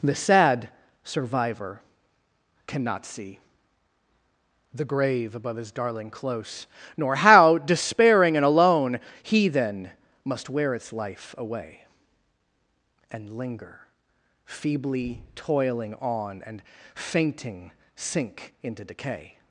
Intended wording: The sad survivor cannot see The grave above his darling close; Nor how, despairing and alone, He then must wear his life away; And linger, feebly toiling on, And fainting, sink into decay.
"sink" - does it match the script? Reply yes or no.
yes